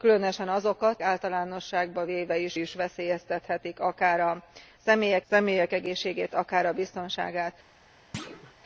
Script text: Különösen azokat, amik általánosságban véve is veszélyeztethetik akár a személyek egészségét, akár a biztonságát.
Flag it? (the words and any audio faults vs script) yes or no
yes